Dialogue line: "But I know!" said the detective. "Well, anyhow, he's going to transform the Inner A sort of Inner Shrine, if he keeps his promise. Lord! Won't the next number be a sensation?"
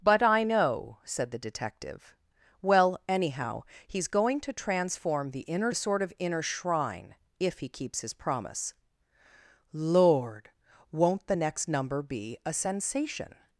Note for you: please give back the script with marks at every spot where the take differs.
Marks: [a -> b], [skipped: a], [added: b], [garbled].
"But I know!" said the detective. "Well, anyhow, he's going to transform the Inner A sort of Inner Shrine, if he keeps his promise. Lord! Won't the next number be a sensation?"